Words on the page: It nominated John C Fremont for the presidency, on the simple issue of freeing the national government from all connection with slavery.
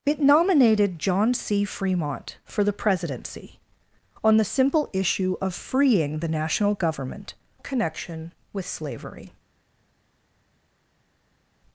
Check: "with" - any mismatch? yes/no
no